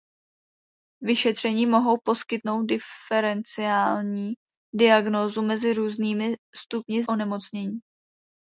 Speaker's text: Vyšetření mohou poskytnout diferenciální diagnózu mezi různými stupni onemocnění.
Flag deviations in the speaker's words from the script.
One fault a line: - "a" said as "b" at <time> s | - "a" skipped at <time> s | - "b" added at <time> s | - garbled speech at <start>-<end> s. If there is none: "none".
none